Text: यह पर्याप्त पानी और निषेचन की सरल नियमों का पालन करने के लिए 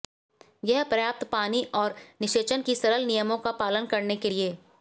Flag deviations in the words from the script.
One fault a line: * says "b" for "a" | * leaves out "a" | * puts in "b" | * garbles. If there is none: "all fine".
all fine